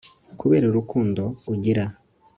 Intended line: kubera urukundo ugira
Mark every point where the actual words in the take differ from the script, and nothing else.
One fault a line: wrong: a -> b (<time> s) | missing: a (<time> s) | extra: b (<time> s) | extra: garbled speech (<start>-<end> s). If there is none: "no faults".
no faults